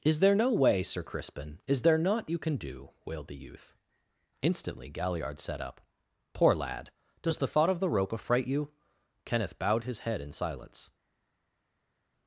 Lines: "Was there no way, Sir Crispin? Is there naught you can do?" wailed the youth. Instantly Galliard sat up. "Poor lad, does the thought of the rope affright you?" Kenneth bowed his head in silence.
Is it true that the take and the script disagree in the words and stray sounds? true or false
true